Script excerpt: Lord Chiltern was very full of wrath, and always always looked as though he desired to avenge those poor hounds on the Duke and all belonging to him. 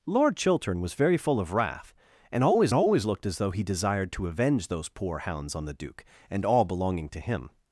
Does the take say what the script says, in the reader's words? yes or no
yes